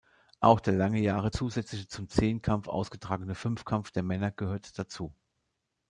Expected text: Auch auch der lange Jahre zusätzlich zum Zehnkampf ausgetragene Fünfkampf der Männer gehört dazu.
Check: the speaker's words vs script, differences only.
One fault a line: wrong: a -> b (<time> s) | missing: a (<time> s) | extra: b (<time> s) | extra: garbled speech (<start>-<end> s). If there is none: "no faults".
missing: auch (0.6 s)